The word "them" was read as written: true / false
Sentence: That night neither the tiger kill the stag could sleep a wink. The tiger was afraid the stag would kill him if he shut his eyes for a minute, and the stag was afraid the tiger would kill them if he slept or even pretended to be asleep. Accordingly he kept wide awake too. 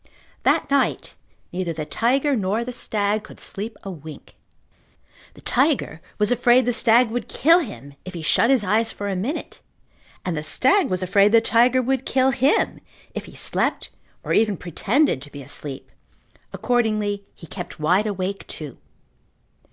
false